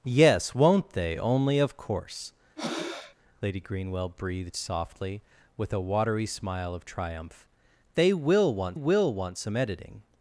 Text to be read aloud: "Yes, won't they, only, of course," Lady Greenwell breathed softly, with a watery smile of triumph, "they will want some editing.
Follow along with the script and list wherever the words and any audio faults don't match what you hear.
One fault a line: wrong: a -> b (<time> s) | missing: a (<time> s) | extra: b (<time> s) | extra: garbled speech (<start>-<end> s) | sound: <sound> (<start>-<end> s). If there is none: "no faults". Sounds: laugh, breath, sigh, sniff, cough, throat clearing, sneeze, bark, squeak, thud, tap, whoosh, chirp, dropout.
sound: breath (2.6-3.2 s)
extra: will want (8.7 s)